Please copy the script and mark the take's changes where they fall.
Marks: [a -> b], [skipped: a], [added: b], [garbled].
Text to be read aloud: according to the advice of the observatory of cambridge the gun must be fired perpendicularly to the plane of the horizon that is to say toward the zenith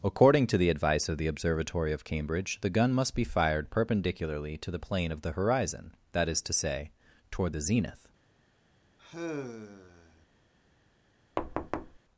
according to the advice of the observatory of cambridge the gun must be fired perpendicularly to the plane of the horizon that is to say toward the zenith